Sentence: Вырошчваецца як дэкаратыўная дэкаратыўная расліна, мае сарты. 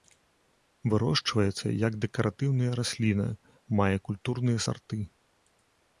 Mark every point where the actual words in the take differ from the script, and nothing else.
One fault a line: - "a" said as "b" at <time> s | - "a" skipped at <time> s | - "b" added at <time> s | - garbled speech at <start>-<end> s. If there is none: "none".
- "дэкаратыўная" skipped at 2.7 s
- "культурныя" added at 4.1 s